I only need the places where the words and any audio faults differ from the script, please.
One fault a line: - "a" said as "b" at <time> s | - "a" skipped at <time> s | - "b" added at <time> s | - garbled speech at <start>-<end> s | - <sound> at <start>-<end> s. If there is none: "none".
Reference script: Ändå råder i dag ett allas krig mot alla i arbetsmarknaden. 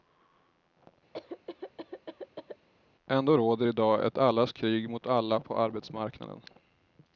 - cough at 1.1-2.7 s
- "i" said as "på" at 5.4 s